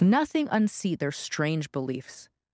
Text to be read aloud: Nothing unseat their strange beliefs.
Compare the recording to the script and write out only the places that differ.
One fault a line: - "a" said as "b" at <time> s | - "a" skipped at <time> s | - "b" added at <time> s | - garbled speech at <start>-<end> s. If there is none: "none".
none